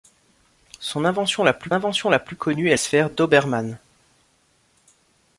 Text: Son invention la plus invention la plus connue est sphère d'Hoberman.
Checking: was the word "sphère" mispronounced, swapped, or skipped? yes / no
no